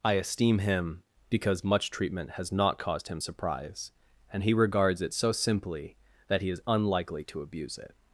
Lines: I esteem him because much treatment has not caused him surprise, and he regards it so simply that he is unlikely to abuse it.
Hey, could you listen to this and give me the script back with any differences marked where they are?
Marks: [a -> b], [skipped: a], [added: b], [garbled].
I esteem him because much treatment has not caused him surprise, and he regards it so simply that he is unlikely to abuse it.